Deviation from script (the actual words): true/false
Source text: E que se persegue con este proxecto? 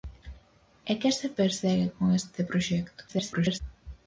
true